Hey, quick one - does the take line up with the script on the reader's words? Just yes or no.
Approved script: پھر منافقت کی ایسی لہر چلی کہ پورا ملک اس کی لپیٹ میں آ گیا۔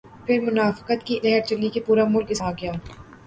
no